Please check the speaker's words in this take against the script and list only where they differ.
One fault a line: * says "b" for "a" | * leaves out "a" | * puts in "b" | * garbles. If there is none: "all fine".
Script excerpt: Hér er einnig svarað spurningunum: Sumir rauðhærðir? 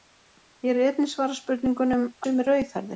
all fine